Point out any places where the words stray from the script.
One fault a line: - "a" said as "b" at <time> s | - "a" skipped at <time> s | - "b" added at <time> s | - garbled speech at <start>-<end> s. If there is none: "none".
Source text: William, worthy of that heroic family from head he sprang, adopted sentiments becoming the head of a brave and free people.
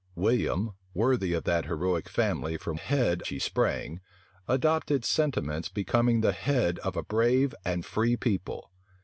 none